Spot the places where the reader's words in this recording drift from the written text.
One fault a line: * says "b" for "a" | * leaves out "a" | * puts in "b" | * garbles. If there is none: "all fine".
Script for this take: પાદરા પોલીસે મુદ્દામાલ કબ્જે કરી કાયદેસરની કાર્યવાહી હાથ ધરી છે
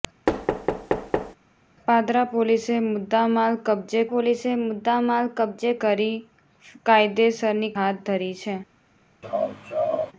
* puts in "પોલીસે મુદ્દામાલ કબ્જે"
* leaves out "કાર્યવાહી"